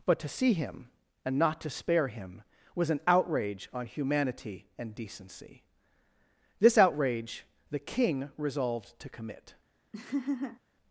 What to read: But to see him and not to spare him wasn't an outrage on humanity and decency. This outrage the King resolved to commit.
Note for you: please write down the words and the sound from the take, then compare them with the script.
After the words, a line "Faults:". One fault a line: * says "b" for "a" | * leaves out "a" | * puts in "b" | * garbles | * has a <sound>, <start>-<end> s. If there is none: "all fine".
But to see him and not to spare him was an outrage on humanity and decency. This outrage the King resolved to commit.
Faults:
* says "was" for "wasn't"
* has a laugh, 9.9-10.6 s